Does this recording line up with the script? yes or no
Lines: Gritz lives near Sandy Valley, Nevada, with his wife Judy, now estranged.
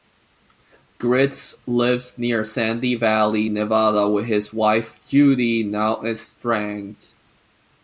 yes